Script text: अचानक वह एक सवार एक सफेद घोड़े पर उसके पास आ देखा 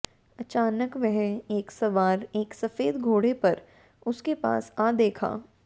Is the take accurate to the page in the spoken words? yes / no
yes